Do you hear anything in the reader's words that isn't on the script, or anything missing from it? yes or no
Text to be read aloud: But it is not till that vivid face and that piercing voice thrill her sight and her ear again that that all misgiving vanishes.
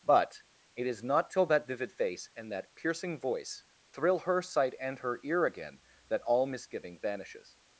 yes